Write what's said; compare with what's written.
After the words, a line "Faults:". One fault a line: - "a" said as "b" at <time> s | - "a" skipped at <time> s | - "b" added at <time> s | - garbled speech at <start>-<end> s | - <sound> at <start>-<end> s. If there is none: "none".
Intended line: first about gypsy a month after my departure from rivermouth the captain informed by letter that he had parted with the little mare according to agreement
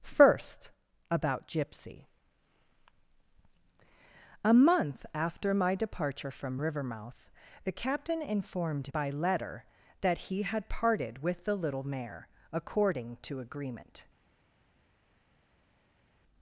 first about gypsy a month after my departure from rivermouth the captain informed by letter that he had parted with the little mare according to agreement
Faults:
none